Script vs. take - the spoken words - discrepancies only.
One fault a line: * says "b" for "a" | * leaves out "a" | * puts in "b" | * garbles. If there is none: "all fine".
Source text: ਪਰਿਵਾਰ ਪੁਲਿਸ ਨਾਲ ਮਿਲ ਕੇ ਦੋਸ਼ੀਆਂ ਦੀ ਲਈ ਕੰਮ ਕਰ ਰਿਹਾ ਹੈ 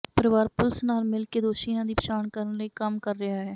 * puts in "ਪਛਾਣ ਕਰਨ"